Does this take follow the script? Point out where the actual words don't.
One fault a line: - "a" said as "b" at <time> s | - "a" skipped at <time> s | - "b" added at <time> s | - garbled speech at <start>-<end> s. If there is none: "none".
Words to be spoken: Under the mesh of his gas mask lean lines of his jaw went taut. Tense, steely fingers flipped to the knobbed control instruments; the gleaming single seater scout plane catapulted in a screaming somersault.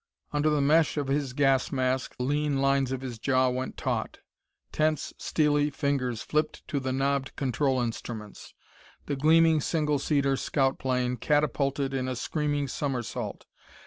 none